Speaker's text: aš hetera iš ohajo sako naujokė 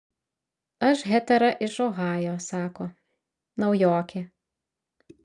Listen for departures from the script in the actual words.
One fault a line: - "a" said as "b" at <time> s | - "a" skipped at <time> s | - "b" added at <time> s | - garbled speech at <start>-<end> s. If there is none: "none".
none